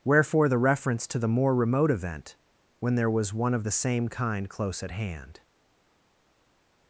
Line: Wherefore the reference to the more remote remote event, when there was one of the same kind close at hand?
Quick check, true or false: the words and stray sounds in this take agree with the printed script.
false